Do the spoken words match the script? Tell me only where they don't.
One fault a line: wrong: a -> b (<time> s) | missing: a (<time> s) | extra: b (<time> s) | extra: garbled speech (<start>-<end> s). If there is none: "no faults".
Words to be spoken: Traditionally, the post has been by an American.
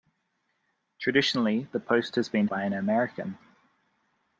no faults